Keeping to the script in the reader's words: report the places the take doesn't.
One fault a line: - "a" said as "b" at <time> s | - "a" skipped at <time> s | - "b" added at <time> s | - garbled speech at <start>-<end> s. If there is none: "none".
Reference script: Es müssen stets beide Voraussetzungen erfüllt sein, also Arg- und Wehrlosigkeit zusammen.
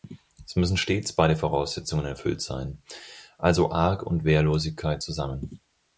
none